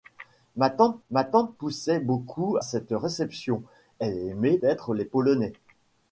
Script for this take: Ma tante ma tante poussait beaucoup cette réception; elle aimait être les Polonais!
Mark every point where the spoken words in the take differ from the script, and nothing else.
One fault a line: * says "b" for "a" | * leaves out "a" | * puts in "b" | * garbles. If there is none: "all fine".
all fine